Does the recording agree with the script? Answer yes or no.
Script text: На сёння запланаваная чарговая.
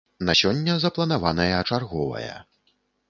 yes